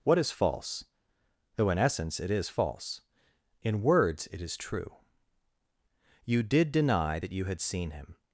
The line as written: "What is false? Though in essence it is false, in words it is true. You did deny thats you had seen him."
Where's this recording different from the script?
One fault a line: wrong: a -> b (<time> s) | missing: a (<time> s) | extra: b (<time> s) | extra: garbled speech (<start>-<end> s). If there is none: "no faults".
wrong: thats -> that (7.2 s)